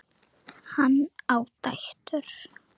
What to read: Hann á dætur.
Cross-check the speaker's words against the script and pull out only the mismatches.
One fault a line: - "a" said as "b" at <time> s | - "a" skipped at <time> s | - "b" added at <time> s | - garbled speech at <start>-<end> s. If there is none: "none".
none